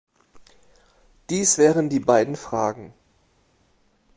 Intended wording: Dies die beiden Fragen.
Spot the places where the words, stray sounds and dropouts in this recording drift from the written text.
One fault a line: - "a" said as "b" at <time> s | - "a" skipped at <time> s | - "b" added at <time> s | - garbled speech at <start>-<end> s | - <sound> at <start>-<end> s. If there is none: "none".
- "wären" added at 1.6 s